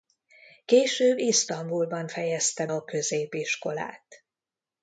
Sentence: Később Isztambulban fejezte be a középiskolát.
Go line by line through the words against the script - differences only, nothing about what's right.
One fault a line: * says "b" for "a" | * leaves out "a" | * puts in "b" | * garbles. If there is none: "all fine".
* leaves out "be"